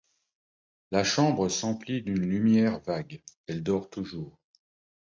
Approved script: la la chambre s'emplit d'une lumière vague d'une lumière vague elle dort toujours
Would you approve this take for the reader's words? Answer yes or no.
no